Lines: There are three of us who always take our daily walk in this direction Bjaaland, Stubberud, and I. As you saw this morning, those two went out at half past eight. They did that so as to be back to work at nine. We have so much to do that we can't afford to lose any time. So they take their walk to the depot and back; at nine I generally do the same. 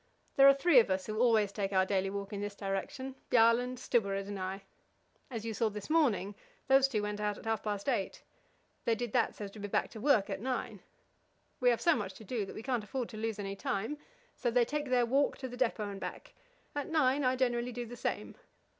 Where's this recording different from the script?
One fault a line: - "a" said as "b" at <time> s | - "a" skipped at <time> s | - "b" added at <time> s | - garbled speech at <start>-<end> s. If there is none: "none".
none